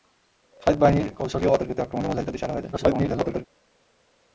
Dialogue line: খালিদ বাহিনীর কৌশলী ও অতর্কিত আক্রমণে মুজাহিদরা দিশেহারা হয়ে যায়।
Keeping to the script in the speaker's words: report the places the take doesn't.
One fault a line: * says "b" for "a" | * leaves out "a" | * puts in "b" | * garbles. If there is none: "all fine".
* garbles